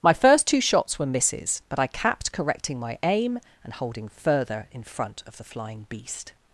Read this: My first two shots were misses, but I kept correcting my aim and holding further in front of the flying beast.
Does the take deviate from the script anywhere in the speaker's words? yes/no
yes